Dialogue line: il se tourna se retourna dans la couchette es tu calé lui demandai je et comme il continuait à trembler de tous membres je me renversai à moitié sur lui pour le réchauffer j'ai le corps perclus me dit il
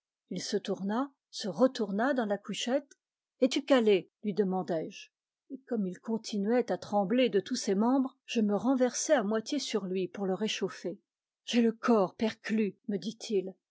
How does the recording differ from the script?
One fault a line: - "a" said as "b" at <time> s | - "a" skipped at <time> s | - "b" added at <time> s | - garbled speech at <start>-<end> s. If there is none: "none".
- "ses" added at 7.6 s